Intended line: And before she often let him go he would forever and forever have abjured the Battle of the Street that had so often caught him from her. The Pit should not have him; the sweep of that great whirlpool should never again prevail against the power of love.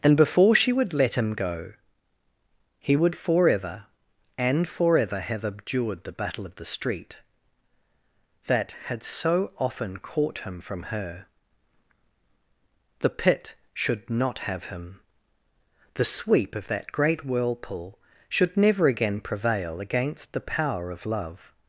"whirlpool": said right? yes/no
yes